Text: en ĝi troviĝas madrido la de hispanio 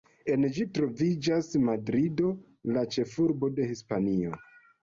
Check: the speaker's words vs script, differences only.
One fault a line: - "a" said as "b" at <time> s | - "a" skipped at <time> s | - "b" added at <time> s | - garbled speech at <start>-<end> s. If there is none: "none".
- "ĉefurbo" added at 3.0 s